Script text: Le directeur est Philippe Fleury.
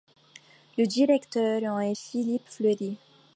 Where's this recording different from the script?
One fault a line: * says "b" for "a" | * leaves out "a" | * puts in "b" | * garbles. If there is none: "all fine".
* puts in "en"